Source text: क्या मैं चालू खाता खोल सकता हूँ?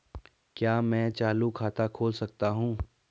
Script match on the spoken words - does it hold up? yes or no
yes